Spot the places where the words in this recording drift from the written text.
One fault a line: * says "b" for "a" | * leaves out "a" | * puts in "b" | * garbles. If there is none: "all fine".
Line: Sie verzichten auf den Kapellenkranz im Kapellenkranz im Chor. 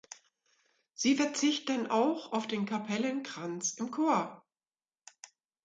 * puts in "auch"
* leaves out "Kapellenkranz im"